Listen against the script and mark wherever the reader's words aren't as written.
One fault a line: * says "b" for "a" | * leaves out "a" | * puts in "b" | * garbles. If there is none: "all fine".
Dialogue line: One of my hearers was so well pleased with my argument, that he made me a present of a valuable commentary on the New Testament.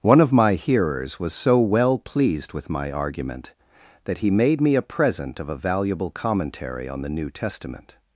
all fine